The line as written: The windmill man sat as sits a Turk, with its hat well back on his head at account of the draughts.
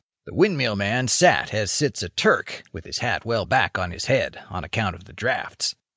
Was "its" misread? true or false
true